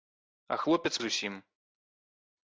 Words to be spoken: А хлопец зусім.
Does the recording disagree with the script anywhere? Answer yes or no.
no